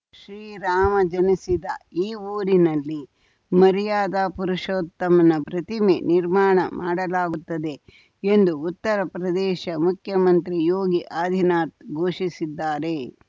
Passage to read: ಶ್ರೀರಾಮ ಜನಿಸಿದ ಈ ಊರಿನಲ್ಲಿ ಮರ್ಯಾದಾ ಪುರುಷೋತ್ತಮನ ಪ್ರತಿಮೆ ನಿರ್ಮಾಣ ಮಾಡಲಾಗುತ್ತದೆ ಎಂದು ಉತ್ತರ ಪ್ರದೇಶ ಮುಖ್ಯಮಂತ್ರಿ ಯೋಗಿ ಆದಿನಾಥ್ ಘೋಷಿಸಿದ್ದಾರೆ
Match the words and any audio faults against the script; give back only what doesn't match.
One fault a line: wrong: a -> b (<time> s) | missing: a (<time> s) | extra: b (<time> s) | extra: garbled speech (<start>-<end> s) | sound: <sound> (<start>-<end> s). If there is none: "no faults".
no faults